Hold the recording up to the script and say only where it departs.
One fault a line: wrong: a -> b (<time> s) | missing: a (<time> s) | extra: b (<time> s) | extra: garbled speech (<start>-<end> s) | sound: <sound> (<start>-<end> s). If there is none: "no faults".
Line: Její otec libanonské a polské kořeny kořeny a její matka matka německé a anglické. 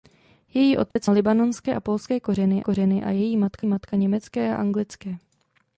sound: dropout (0.9-1.0 s)